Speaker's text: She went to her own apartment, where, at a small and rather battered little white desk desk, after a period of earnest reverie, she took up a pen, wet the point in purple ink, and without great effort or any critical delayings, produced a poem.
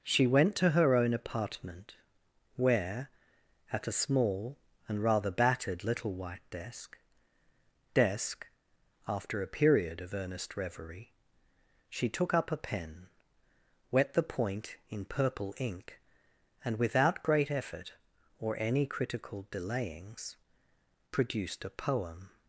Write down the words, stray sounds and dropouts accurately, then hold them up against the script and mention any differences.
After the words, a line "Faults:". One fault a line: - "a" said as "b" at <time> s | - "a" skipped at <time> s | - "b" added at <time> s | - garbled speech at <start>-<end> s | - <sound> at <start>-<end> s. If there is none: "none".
She went to her own apartment, where, at a small and rather battered little white desk desk, after a period of earnest reverie, she took up a pen, wet the point in purple ink, and without great effort or any critical delayings, produced a poem.
Faults:
none